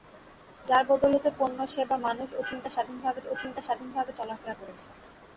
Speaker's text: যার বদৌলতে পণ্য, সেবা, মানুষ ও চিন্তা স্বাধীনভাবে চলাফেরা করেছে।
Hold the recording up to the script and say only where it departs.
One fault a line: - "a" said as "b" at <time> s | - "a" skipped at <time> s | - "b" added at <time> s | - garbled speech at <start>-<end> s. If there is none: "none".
- "ও চিন্তা স্বাধীনভাবে" added at 3.3 s